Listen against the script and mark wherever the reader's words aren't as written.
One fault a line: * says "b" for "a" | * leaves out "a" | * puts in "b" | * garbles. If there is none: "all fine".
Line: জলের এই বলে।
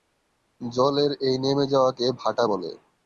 * puts in "নেমে যাওয়াকে ভাটা"